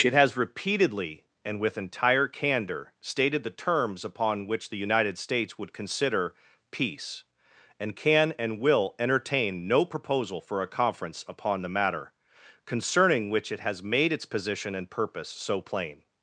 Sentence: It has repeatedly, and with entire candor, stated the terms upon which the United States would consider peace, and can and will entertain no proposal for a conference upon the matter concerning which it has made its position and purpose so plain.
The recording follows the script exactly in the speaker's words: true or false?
true